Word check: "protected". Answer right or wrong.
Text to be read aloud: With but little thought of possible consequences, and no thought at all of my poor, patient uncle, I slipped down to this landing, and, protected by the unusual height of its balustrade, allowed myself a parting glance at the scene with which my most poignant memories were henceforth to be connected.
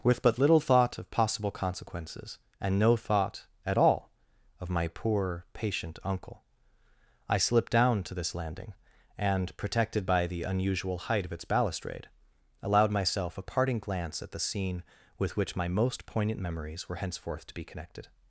right